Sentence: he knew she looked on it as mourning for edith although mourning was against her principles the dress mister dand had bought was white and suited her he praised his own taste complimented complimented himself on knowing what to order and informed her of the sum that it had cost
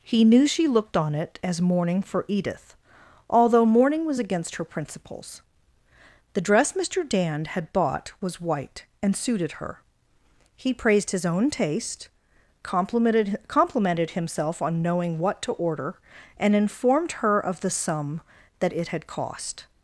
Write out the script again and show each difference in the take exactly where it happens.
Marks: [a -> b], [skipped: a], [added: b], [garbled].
he knew she looked on it as mourning for edith although mourning was against her principles the dress mister dand had bought was white and suited her he praised his own taste complimented complimented himself on knowing what to order and informed her of the sum that it had cost